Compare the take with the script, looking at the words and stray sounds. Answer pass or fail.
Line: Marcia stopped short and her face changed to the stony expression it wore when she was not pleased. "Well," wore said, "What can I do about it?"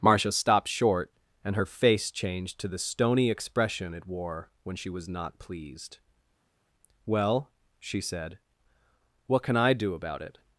fail